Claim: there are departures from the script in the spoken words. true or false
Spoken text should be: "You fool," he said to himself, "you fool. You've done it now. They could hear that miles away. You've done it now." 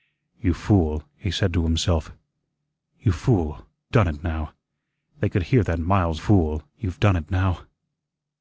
true